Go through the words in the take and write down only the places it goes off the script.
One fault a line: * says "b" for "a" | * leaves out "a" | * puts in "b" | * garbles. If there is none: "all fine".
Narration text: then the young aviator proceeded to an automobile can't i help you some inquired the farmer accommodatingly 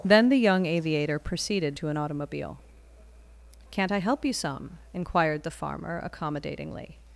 all fine